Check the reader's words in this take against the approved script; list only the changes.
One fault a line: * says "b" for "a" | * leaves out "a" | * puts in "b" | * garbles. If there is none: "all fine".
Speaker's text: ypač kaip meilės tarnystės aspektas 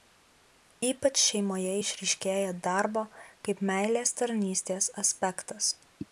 * puts in "šeimoje išryškėja darbo"